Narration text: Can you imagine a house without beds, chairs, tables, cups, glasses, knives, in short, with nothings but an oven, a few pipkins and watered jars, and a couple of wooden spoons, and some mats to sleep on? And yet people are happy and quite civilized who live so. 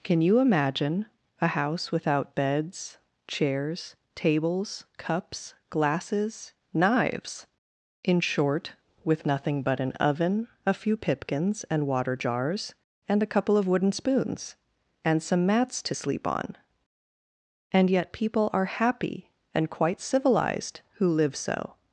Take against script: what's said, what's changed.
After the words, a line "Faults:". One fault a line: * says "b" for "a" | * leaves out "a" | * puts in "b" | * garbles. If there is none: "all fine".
Can you imagine a house without beds, chairs, tables, cups, glasses, knives, in short, with nothing but an oven, a few pipkins and water jars, and a couple of wooden spoons, and some mats to sleep on? And yet people are happy and quite civilized who live so.
Faults:
* says "nothing" for "nothings"
* says "water" for "watered"